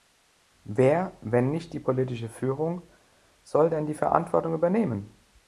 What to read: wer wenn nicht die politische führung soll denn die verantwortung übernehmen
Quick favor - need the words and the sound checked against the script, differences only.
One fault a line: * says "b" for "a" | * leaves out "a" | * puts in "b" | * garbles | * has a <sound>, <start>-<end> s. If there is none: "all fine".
all fine